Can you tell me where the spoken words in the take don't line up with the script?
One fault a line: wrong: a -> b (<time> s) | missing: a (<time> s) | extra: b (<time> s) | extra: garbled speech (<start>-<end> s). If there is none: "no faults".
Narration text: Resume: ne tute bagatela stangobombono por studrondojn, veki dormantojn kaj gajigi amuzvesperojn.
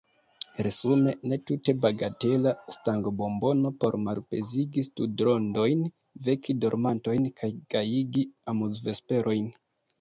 extra: malpezigi (4.1 s)